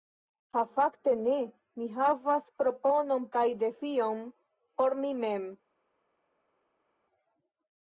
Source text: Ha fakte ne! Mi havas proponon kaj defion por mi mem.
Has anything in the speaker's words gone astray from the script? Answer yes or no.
no